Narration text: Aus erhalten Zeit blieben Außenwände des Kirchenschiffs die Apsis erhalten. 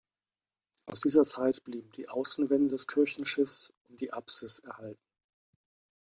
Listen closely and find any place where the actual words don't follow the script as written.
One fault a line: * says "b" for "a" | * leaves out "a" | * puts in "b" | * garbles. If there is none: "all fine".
* says "dieser" for "erhalten"
* puts in "die"
* puts in "und"